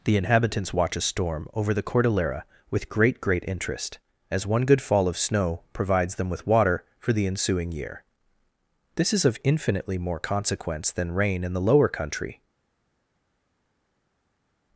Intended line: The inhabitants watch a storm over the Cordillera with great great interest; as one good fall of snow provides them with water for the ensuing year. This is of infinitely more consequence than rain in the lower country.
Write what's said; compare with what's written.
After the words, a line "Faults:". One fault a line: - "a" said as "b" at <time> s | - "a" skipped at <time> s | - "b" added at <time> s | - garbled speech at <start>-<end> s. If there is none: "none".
The inhabitants watch a storm over the Cordillera with great great interest; as one good fall of snow provides them with water for the ensuing year. This is of infinitely more consequence than rain in the lower country.
Faults:
none